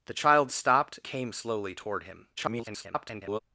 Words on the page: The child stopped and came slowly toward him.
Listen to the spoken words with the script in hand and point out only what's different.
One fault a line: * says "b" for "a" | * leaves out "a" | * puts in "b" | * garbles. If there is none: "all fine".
* leaves out "and"
* garbles